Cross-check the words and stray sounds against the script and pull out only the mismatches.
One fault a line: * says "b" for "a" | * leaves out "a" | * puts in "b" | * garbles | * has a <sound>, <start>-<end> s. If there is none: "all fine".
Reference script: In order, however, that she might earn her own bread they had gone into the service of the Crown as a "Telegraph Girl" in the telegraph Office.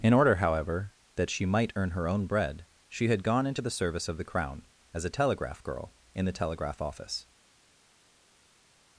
* says "she" for "they"